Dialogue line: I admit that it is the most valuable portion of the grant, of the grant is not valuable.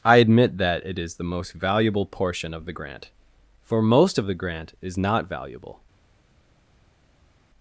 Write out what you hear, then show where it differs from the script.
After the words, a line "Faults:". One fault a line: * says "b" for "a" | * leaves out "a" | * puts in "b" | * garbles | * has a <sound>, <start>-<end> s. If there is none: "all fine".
I admit that it is the most valuable portion of the grant, for most of the grant is not valuable.
Faults:
* puts in "for most"